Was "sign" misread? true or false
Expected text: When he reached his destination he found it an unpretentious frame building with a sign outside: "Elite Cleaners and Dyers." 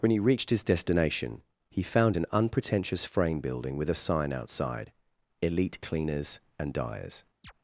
false